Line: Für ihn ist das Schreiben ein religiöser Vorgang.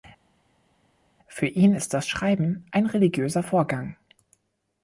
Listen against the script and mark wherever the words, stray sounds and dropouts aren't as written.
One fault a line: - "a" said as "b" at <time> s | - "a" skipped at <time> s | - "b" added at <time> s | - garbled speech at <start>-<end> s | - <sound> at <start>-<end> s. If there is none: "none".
none